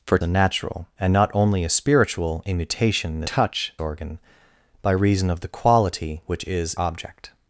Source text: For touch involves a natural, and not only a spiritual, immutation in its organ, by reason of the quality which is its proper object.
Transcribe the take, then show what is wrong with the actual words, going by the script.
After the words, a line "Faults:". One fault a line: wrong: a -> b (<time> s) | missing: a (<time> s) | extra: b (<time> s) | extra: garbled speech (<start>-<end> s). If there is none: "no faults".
For a natural, and not only a spiritual, immutation in touch organ, by reason of the quality which is object.
Faults:
missing: touch involves (0.2 s)
wrong: its -> touch (3.2 s)
missing: its proper (6.7 s)